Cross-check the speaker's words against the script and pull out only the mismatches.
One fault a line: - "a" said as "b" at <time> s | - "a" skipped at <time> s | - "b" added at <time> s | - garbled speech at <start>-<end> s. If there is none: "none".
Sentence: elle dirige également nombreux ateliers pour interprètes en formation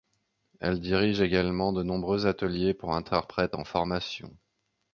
- "de" added at 1.7 s